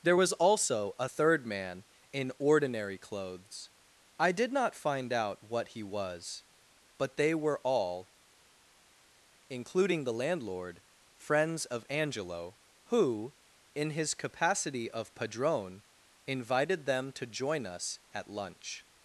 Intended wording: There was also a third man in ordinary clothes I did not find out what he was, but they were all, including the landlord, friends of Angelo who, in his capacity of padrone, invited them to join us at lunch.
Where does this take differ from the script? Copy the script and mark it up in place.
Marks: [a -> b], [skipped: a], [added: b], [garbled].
There was also a third man in ordinary clothes I did not find out what he was, but they were all, including the landlord, friends of Angelo who, in his capacity of padrone, invited them to join us at lunch.